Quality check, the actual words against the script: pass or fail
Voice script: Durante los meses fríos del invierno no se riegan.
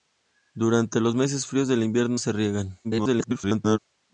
fail